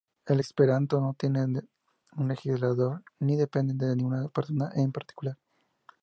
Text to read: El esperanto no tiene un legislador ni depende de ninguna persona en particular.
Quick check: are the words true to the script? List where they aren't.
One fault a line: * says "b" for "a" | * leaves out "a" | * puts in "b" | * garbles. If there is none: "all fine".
all fine